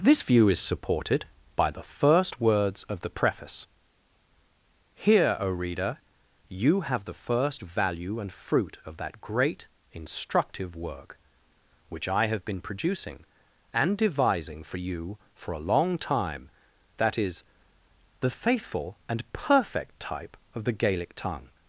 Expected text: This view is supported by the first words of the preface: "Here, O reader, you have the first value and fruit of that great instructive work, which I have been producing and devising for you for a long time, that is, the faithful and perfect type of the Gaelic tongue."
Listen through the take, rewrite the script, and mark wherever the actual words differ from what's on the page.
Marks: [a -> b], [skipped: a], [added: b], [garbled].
This view is supported by the first words of the preface: "Here, O reader, you have the first value and fruit of that great instructive work, which I have been producing and devising for you for a long time, that is, the faithful and perfect type of the Gaelic tongue."